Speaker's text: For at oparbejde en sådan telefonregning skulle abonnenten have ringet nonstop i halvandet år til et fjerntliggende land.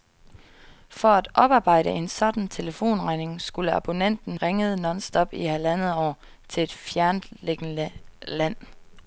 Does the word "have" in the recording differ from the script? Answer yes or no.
yes